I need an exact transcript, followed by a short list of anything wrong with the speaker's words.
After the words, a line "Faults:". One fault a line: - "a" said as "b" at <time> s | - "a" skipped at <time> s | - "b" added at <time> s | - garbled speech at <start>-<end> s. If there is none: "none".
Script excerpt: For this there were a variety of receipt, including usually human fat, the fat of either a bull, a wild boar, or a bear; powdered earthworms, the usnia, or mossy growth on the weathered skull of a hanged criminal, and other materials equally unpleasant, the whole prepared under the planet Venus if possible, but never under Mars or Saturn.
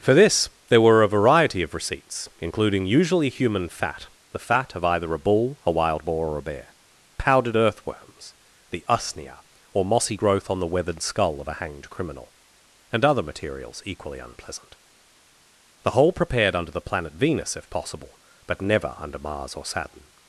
For this there were a variety of receipts, including usually human fat, the fat of either a bull, a wild boar, or a bear; powdered earthworms, the usnia, or mossy growth on the weathered skull of a hanged criminal, and other materials equally unpleasant, the whole prepared under the planet Venus if possible, but never under Mars or Saturn.
Faults:
- "receipt" said as "receipts" at 1.8 s